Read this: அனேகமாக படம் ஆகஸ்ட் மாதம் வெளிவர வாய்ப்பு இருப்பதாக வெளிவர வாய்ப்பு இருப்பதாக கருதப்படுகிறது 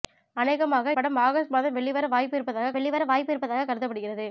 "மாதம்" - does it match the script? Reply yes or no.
yes